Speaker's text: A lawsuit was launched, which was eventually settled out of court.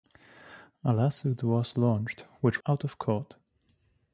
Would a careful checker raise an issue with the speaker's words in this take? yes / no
yes